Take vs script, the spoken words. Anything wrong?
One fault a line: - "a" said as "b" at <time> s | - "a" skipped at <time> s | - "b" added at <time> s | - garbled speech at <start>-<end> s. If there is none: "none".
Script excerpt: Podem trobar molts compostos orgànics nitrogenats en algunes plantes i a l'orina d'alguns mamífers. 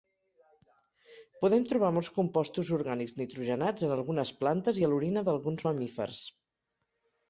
none